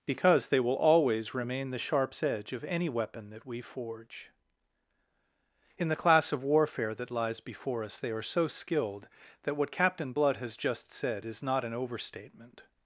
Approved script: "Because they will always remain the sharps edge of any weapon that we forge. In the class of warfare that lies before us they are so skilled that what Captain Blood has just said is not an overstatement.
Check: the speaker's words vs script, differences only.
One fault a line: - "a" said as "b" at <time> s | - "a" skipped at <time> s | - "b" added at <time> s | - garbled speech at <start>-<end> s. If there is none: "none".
none